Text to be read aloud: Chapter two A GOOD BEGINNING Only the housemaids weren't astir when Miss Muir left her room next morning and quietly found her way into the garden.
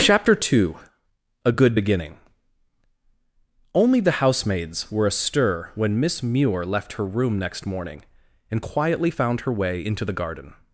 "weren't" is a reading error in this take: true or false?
true